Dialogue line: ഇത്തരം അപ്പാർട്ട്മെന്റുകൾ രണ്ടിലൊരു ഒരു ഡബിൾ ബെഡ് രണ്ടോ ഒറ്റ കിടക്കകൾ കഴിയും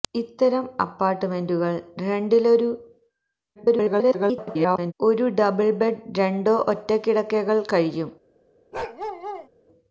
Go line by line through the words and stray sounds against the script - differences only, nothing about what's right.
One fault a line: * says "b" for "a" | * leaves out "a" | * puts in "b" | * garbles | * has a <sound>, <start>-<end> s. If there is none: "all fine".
* garbles
* has a bark, 8.7-9.5 s